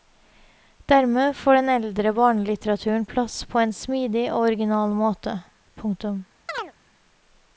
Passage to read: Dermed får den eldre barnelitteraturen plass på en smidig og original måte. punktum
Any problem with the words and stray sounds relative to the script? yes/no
yes